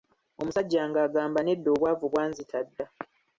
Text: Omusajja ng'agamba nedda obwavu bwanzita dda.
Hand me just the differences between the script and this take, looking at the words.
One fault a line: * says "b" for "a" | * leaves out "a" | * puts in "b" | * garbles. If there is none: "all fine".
all fine